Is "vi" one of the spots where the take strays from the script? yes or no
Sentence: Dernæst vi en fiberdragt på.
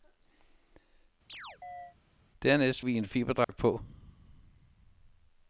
no